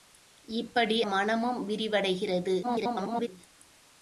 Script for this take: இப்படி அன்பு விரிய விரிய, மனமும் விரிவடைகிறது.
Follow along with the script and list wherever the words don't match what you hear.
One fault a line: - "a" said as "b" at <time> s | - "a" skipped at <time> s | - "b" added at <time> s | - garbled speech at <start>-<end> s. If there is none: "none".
- "அன்பு விரிய விரிய" skipped at 1.0 s
- garbled speech at 2.6-3.3 s